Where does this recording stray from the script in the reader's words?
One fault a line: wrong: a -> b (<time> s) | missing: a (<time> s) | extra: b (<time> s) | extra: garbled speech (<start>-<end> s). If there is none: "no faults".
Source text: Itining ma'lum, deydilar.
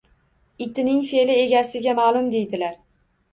extra: fe'li egasiga (1.1 s)